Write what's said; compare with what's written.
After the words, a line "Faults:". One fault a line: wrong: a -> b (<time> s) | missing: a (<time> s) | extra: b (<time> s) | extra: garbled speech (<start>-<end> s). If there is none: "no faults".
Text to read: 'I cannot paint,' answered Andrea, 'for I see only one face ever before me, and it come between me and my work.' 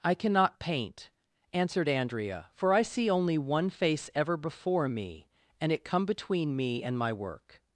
'I cannot paint,' answered Andrea, 'for I see only one face ever before me, and it come between me and my work.'
Faults:
no faults